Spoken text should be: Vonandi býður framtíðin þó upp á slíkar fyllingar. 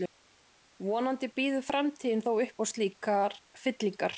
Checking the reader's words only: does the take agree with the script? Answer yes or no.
yes